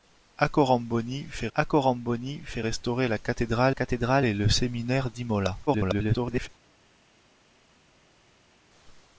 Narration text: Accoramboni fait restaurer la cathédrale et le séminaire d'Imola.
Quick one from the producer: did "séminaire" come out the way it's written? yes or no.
yes